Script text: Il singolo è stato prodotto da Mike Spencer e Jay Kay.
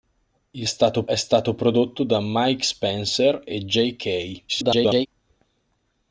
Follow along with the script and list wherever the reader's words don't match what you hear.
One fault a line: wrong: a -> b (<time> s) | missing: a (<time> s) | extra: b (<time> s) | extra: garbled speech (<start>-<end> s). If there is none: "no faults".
wrong: singolo -> stato (0.6 s)
extra: garbled speech (4.5-5.1 s)